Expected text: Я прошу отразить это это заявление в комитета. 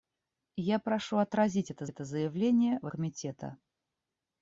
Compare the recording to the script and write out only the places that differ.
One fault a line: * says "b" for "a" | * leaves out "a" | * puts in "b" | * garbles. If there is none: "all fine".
all fine